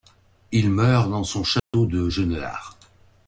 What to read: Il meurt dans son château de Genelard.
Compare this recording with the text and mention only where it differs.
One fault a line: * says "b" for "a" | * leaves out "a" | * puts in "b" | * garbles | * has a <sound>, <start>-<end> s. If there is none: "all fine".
* has a dropout, 1.6-1.7 s